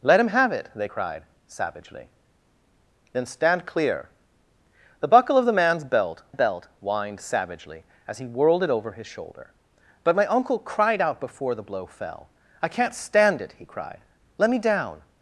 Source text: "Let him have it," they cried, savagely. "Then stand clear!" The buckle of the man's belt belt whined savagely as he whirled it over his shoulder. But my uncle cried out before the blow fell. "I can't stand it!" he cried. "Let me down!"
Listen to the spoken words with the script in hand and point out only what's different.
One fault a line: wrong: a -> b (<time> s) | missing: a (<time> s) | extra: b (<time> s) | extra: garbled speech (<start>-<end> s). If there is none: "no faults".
no faults